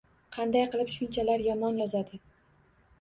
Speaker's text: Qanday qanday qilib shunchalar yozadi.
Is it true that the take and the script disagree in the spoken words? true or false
true